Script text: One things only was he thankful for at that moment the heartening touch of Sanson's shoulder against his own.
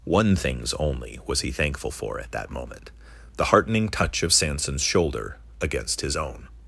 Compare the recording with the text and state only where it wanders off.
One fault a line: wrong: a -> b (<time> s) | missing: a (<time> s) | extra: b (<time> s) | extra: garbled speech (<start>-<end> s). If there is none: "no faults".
no faults